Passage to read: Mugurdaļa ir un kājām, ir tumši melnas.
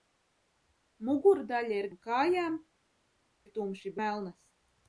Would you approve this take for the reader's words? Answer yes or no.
yes